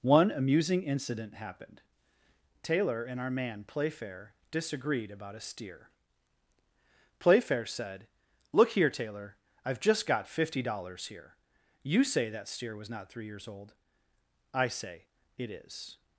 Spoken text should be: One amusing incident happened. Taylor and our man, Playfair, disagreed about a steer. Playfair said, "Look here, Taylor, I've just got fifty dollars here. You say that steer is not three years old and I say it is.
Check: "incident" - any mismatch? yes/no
no